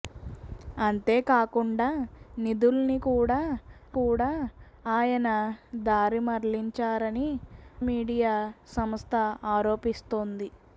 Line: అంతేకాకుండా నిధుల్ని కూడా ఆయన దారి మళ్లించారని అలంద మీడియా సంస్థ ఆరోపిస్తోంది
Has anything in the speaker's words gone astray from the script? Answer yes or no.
yes